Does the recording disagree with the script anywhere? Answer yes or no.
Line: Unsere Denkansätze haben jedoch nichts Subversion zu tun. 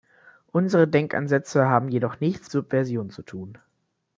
no